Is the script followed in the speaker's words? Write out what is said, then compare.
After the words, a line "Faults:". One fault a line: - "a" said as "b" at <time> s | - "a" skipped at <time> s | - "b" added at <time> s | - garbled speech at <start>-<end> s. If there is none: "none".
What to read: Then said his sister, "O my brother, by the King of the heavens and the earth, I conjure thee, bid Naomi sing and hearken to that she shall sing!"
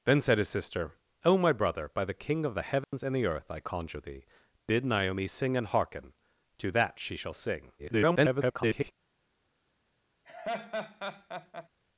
Then said his sister, "O my brother, by the King of the heavens and the earth, I conjure thee, bid Naomi sing and hearken to that she shall sing!" [garbled]
Faults:
- garbled speech at 7.8-8.9 s